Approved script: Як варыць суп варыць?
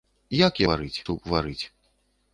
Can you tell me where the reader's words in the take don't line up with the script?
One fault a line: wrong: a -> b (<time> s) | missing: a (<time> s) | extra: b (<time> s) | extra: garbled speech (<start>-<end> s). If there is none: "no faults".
no faults